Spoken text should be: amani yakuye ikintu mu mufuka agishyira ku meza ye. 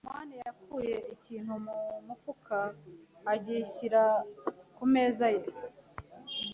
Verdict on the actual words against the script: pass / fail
pass